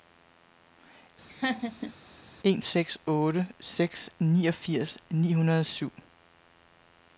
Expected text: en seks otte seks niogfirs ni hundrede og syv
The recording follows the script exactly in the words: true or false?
true